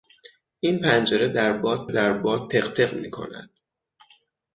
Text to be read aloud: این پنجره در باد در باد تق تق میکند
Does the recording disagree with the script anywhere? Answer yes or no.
no